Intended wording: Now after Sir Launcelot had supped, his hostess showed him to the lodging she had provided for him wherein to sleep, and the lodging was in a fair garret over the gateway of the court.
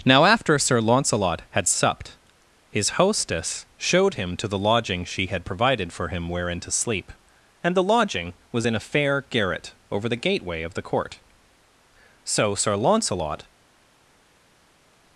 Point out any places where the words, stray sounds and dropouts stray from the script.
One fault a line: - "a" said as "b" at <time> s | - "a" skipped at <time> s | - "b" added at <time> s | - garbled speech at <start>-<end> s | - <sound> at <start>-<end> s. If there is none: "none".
- "So Sir Launcelot" added at 12.2 s